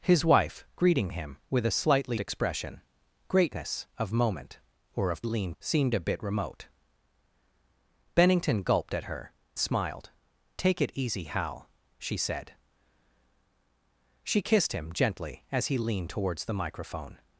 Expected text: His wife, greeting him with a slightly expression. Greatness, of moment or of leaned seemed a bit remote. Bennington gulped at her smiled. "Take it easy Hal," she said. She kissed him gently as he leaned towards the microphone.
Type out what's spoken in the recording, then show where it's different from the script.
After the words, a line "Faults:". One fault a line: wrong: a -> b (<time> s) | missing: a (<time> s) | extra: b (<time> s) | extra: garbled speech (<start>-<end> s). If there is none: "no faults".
His wife, greeting him with a slightly expression. Greatness, of moment or of leaned seemed a bit remote. Bennington gulped at her smiled. "Take it easy Hal," she said. She kissed him gently as he leaned towards the microphone.
Faults:
no faults